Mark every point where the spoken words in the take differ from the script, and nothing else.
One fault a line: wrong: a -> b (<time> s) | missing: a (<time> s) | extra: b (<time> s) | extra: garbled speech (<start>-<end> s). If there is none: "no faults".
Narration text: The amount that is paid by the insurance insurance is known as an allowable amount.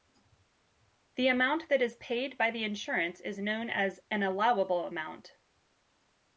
missing: insurance (3.2 s)